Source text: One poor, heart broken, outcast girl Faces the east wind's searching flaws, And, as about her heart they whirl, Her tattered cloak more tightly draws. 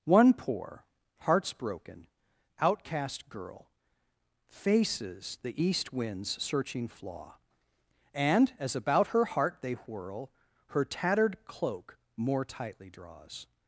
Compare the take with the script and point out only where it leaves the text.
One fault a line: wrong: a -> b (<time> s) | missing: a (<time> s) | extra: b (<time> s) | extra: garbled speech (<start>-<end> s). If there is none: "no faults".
wrong: heart -> hearts (1.2 s)
wrong: flaws -> flaw (6.9 s)